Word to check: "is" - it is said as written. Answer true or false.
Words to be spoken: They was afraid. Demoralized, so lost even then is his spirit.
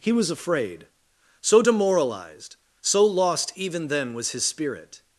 false